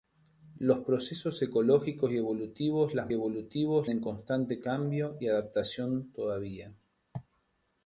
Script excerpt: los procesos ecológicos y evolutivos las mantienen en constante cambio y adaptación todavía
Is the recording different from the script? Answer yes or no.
yes